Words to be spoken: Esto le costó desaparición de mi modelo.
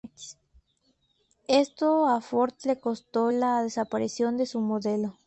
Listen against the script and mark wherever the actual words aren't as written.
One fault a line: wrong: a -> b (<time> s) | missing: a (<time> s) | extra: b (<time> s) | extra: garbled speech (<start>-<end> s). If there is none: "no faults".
extra: a Ford (2.1 s)
extra: la (3.2 s)
wrong: mi -> su (4.4 s)